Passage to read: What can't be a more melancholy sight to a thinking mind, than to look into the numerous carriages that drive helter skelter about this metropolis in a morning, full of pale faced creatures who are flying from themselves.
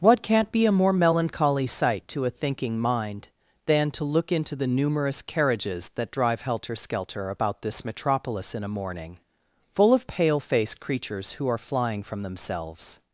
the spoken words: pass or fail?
pass